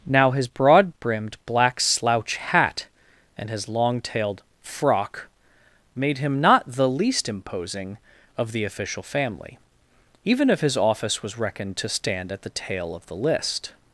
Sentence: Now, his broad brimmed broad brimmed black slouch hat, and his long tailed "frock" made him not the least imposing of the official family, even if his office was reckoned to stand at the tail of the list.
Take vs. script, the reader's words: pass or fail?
fail